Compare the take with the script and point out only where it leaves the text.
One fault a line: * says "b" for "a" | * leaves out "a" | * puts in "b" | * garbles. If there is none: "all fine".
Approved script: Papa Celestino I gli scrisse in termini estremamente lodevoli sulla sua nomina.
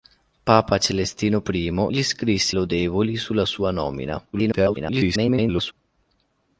* leaves out "in termini estremamente"
* garbles